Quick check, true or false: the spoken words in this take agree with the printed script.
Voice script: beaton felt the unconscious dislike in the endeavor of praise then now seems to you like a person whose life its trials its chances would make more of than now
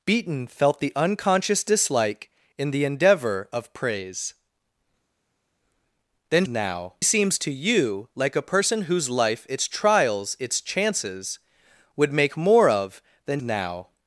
true